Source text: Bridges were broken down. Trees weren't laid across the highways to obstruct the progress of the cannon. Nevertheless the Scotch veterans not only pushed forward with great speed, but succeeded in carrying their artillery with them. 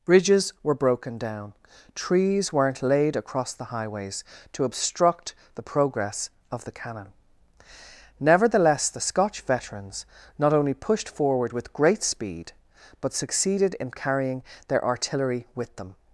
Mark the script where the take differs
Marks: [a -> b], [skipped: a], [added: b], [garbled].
Bridges were broken down. Trees weren't laid across the highways to obstruct the progress of the cannon. Nevertheless the Scotch veterans not only pushed forward with great speed, but succeeded in carrying their artillery with them.